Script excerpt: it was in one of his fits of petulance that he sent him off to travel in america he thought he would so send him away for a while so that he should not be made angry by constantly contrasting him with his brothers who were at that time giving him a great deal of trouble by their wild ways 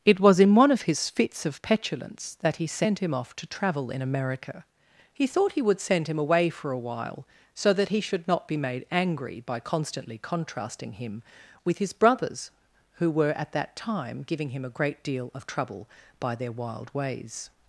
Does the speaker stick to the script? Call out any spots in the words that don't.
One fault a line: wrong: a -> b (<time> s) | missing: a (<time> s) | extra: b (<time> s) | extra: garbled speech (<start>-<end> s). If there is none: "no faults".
missing: so (5.8 s)